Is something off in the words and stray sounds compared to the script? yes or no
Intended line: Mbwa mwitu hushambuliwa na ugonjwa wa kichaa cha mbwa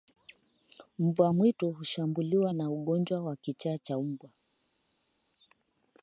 no